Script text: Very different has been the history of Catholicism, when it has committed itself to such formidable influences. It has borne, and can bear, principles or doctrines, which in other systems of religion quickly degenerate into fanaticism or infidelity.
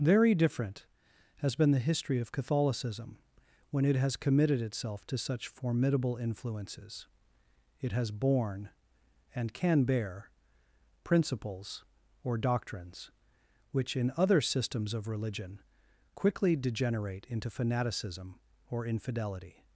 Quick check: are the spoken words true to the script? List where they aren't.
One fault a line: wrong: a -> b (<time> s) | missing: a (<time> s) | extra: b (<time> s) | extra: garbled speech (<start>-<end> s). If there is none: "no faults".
no faults